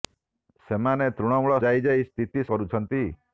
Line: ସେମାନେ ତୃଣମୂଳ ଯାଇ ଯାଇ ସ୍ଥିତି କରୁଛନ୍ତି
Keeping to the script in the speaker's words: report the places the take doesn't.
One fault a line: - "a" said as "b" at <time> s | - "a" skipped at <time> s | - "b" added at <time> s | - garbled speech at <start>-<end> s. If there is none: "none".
none